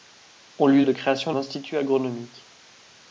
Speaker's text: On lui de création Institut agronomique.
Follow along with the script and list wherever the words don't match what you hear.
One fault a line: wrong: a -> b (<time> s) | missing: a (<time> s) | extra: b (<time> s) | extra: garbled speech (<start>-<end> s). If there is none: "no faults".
no faults